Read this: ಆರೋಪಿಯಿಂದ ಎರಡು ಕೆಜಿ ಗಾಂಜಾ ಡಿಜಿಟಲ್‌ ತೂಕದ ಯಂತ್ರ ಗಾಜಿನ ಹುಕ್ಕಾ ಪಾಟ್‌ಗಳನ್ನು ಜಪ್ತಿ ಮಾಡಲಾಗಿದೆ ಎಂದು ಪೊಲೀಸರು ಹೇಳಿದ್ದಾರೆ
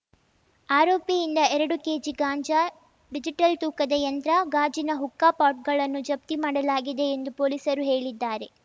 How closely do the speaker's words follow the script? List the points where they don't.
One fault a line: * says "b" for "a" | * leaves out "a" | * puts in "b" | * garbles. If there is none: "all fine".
all fine